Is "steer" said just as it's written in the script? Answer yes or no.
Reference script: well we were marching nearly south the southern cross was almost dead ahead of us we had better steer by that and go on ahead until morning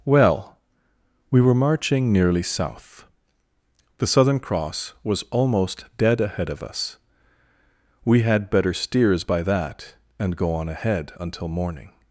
no